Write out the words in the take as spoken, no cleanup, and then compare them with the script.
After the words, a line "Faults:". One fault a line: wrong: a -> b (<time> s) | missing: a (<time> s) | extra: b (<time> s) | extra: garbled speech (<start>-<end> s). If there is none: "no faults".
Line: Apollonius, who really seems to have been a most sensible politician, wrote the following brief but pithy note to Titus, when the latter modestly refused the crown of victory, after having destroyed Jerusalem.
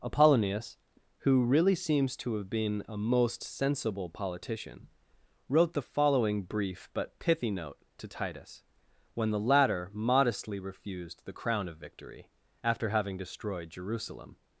Apollonius, who really seems to have been a most sensible politician, wrote the following brief but pithy note to Titus, when the latter modestly refused the crown of victory, after having destroyed Jerusalem.
Faults:
no faults